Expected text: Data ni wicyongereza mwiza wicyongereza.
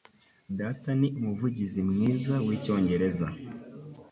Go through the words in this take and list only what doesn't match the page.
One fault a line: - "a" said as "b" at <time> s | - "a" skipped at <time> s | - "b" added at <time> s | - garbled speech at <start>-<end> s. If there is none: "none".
- "wicyongereza" said as "umuvugizi" at 1.2 s